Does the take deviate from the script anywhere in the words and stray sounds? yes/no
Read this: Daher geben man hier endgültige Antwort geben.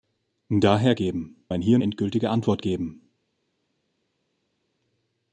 no